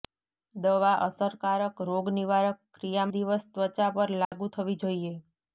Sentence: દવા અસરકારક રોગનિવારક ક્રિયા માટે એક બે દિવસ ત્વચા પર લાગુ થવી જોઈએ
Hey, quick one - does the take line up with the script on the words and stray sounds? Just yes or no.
no